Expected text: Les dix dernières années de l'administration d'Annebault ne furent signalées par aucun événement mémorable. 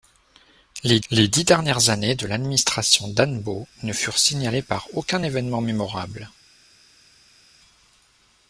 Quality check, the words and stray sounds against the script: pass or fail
fail